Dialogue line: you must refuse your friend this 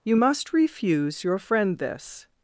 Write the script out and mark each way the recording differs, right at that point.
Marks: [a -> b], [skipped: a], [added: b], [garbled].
you must refuse your friend this